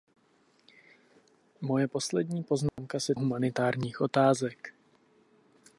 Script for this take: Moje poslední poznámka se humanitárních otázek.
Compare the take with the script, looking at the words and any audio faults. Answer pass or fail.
fail